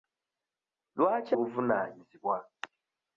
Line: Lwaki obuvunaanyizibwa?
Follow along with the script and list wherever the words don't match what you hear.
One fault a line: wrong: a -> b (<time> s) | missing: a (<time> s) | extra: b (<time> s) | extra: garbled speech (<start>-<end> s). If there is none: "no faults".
no faults